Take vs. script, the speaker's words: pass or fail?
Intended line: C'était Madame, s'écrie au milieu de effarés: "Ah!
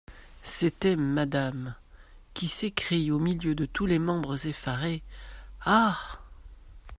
fail